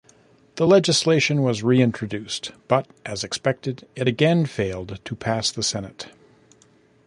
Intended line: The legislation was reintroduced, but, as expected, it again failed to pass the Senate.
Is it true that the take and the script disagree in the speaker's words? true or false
false